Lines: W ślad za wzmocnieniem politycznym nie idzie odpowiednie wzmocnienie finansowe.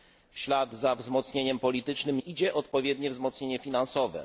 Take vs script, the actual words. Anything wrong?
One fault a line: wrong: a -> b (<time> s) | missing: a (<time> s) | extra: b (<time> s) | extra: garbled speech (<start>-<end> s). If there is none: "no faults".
missing: nie (2.2 s)